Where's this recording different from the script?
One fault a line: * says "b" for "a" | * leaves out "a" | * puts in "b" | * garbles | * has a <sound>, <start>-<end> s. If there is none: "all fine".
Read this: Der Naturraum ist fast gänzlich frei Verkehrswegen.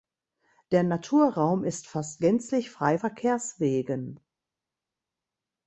all fine